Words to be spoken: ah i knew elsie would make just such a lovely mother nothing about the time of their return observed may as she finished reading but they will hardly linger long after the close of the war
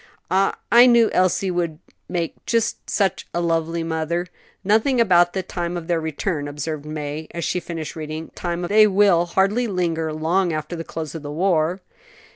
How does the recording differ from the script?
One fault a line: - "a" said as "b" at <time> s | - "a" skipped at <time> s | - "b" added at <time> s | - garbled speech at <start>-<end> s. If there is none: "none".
- "but" said as "time" at 8.3 s